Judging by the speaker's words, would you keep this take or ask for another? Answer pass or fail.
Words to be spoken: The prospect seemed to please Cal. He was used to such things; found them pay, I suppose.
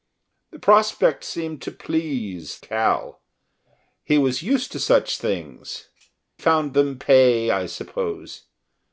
pass